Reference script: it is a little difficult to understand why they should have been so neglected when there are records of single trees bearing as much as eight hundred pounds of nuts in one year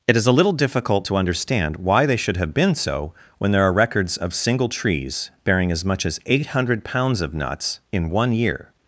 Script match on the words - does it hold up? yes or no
no